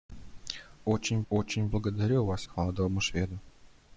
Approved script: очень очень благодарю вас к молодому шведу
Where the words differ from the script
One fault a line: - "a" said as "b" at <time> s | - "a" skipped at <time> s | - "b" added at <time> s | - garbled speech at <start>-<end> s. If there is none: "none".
none